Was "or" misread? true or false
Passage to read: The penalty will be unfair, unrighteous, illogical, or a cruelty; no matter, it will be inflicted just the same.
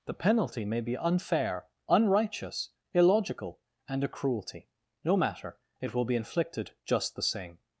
true